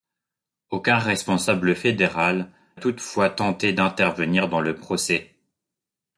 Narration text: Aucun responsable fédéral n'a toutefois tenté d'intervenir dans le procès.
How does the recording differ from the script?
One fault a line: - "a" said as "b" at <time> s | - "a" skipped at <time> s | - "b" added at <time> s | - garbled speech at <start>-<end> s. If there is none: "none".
- "n'a" skipped at 2.5 s